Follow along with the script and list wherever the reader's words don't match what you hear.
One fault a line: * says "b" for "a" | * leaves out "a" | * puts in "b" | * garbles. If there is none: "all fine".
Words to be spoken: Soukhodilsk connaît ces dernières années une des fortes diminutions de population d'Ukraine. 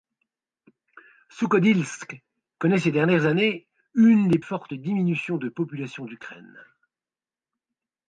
all fine